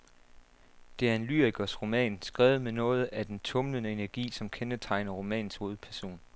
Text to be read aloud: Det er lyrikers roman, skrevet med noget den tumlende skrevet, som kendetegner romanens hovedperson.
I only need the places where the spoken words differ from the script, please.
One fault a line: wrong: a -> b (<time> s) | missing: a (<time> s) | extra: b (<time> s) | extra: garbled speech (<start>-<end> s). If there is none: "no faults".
extra: en (1.1 s)
extra: af (3.1 s)
wrong: skrevet -> energi (3.9 s)